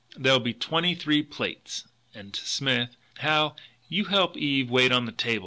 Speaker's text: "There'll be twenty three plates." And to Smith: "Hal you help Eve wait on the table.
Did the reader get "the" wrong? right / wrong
right